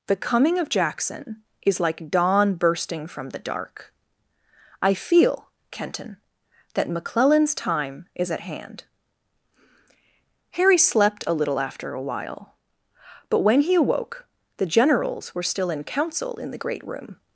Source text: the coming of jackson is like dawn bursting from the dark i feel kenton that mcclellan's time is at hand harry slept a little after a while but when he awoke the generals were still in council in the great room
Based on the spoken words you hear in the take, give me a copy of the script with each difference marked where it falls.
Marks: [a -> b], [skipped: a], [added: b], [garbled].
the coming of jackson is like dawn bursting from the dark i feel kenton that mcclellan's time is at hand harry slept a little after a while but when he awoke the generals were still in council in the great room